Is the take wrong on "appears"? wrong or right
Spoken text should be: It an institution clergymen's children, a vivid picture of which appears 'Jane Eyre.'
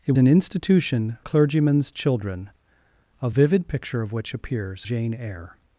right